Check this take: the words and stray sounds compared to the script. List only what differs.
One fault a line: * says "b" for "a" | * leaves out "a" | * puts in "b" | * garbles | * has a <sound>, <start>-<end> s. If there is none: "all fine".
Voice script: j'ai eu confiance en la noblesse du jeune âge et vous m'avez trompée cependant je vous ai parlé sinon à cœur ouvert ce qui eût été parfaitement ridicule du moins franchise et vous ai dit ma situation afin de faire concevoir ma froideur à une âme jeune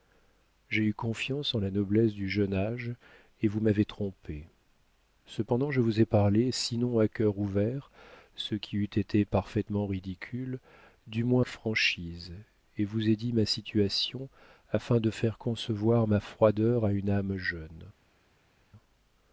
all fine